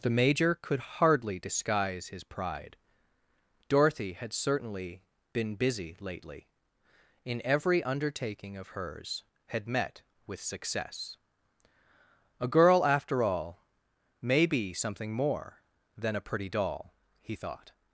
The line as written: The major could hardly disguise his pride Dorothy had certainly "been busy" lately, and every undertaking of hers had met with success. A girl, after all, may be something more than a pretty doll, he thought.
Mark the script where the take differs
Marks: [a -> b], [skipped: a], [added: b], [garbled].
The major could hardly disguise his pride Dorothy had certainly "been busy" lately, [and -> in] every undertaking of hers had met with success. A girl, after all, may be something more than a pretty doll, he thought.